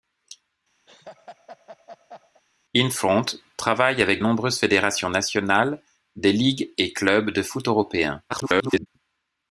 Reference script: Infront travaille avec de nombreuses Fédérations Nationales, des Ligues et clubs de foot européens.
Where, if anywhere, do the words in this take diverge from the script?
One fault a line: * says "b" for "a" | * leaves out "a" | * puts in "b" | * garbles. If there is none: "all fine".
* leaves out "de"
* garbles